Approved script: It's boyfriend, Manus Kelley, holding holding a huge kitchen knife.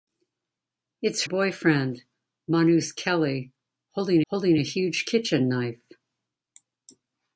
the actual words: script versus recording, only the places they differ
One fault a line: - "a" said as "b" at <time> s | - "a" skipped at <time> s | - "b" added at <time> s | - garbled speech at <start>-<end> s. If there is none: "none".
none